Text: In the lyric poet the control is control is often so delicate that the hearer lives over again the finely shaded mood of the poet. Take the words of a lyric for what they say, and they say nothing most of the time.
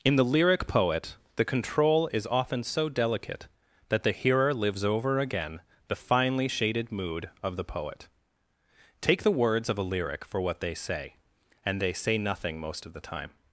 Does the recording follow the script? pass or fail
fail